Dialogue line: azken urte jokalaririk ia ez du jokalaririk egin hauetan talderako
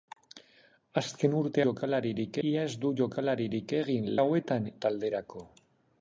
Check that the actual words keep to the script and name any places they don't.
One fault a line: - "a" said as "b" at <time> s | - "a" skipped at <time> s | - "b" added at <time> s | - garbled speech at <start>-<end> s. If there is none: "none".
none